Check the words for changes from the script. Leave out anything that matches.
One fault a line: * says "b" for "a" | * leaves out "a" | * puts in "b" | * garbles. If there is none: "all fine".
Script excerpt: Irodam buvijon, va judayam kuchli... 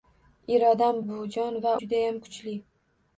all fine